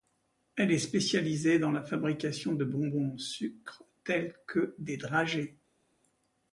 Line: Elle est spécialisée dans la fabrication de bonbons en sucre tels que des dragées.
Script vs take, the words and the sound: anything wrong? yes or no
no